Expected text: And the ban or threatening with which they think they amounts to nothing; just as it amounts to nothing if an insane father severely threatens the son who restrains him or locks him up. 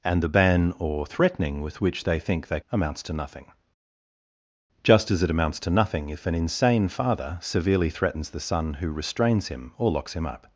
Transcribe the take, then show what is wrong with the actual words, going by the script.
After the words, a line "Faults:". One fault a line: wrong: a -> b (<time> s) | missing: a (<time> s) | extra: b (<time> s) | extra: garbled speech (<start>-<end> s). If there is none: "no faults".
And the ban or threatening with which they think they amounts to nothing; just as it amounts to nothing if an insane father severely threatens the son who restrains him or locks him up.
Faults:
no faults